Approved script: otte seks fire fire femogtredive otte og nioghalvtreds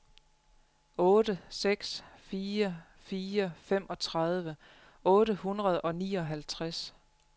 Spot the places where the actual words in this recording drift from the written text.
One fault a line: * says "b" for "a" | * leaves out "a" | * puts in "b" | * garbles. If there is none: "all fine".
* puts in "hundrede"